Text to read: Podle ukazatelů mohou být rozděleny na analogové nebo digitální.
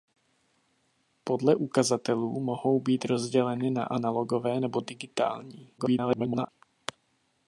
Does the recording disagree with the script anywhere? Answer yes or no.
yes